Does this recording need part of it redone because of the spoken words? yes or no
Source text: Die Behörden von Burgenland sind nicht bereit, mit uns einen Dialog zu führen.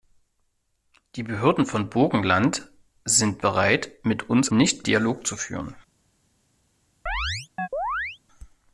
yes